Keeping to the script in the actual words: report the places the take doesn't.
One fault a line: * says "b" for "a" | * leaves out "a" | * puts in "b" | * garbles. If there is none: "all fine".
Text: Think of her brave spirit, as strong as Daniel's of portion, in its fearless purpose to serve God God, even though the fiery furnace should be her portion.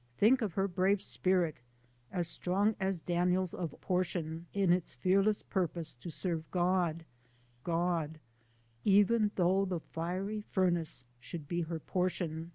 all fine